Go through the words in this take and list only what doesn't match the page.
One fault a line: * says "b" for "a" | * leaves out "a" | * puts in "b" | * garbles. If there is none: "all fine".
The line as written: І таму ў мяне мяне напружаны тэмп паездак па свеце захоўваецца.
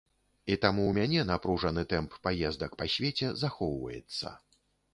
* leaves out "мяне"